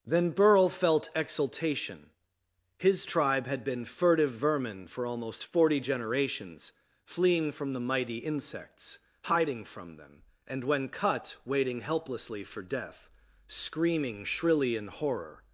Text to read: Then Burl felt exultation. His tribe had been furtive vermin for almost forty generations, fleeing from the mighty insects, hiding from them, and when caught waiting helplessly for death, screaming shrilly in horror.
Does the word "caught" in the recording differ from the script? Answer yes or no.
yes